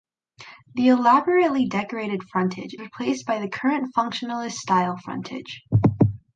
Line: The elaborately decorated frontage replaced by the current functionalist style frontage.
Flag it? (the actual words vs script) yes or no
no